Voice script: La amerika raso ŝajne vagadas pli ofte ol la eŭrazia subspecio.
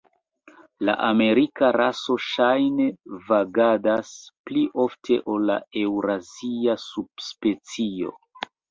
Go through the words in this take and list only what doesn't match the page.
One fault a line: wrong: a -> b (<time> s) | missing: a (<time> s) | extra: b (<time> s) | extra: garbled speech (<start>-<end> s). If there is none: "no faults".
no faults